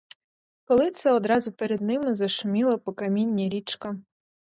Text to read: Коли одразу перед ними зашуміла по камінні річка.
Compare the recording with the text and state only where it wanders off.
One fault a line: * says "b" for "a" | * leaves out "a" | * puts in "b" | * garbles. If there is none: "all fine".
* puts in "це"